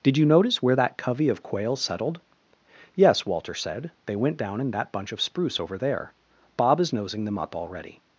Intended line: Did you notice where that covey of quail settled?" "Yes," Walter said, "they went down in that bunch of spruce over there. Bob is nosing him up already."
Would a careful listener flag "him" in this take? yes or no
yes